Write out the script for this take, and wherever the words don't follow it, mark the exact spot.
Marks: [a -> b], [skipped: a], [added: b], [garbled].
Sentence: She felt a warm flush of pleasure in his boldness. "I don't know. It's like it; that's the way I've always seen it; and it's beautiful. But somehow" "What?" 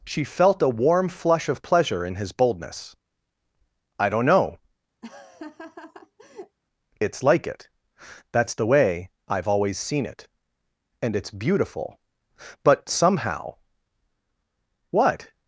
She felt a warm flush of pleasure in his boldness. "I don't know. It's like it; that's the way I've always seen it; and it's beautiful. But somehow" "What?"